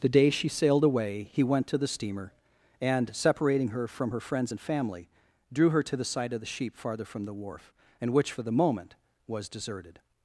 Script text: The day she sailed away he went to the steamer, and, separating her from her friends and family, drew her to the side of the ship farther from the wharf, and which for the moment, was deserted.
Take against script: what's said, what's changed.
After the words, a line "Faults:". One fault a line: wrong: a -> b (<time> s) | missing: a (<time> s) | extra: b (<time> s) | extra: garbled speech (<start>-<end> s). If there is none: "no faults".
The day she sailed away he went to the steamer, and, separating her from her friends and family, drew her to the side of the sheep farther from the wharf, and which for the moment, was deserted.
Faults:
wrong: ship -> sheep (6.5 s)